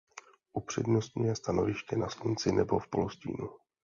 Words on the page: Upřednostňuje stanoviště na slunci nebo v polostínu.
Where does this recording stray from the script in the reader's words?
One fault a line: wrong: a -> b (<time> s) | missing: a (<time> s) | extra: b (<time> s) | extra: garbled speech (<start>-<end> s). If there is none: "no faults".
no faults